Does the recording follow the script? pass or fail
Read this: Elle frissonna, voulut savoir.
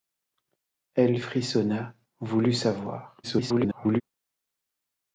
fail